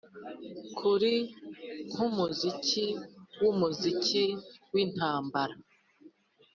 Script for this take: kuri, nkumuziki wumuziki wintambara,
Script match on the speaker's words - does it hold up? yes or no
yes